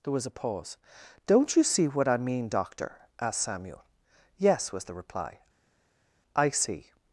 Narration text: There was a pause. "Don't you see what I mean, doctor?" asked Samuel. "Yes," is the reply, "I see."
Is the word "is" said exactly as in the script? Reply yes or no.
no